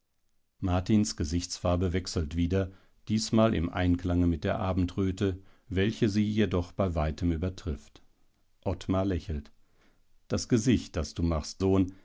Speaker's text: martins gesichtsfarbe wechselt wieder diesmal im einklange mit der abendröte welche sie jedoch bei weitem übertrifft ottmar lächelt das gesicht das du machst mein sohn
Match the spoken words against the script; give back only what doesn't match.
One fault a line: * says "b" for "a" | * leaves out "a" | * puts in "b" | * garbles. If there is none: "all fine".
* leaves out "mein"